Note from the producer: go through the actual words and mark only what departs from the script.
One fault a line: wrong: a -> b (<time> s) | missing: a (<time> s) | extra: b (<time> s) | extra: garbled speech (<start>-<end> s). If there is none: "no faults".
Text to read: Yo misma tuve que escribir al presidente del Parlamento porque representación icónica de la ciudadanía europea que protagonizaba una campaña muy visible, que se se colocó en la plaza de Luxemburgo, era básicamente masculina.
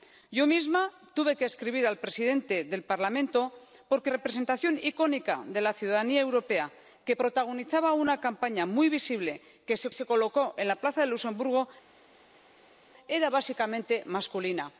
no faults